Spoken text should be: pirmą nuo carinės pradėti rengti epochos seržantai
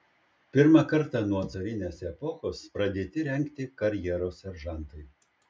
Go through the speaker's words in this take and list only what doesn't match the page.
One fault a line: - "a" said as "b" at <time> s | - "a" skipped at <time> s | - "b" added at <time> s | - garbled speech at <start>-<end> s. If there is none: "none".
- "kartą" added at 0.9 s
- "epochos" added at 2.1 s
- "epochos" said as "karjeros" at 3.8 s